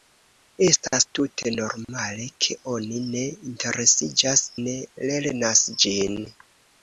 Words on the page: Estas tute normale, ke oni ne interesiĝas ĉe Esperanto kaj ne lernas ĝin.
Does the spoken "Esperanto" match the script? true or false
false